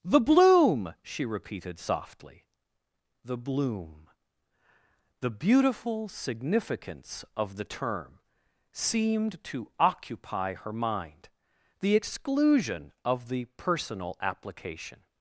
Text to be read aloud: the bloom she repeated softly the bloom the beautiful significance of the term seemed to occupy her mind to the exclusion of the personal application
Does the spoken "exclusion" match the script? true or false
true